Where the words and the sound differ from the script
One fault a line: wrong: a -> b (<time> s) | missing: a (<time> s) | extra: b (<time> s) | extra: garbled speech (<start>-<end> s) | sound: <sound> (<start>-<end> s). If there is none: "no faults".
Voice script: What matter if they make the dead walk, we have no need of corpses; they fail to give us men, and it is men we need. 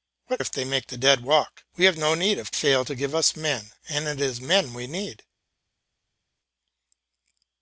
missing: matter (0.4 s)
missing: corpses they (2.5 s)